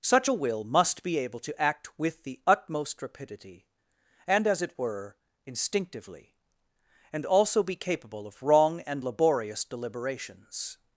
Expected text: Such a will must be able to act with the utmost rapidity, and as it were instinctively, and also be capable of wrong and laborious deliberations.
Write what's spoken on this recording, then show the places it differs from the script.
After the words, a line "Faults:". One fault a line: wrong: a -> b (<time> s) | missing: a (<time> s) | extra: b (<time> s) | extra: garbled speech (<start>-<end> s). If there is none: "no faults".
Such a will must be able to act with the utmost rapidity, and as it were instinctively, and also be capable of wrong and laborious deliberations.
Faults:
no faults